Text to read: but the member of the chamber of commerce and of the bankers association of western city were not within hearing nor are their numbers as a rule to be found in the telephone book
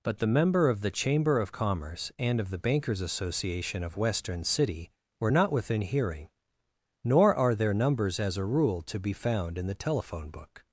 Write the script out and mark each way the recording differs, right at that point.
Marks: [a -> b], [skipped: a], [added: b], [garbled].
but the member of the chamber of commerce and of the bankers association of western city were not within hearing nor are their numbers as a rule to be found in the telephone book